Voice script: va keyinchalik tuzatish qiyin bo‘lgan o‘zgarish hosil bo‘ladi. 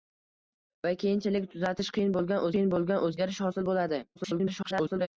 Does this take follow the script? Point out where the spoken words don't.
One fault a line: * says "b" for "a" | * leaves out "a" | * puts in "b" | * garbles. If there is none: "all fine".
* puts in "qiyin bo‘lgan"
* garbles